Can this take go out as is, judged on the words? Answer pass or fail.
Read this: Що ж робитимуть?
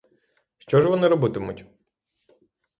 fail